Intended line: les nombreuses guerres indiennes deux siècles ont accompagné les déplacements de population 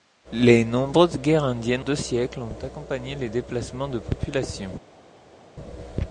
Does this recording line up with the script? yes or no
yes